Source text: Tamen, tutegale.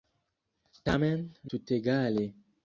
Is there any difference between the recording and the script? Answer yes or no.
no